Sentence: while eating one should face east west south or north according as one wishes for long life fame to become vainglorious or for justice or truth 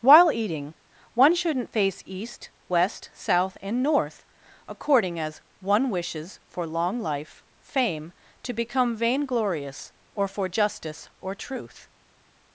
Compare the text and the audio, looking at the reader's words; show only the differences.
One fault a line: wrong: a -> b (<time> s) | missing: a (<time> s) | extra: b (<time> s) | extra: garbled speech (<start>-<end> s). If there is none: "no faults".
wrong: should -> shouldn't (1.4 s)
wrong: or -> and (3.6 s)